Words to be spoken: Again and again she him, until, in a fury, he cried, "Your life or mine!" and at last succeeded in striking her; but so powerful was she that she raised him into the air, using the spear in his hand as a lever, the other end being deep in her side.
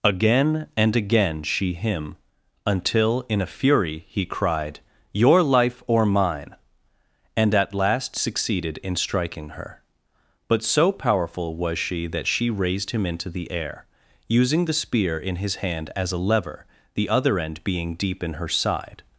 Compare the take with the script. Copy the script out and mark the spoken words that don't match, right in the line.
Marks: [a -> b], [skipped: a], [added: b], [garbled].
Again and again she him, until, in a fury, he cried, "Your life or mine!" and at last succeeded in striking her; but so powerful was she that she raised him into the air, using the spear in his hand as a lever, the other end being deep in her side.